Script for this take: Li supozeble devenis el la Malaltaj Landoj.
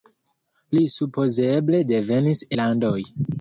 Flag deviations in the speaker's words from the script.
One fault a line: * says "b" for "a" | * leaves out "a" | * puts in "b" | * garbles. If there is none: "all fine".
* leaves out "el la Malaltaj"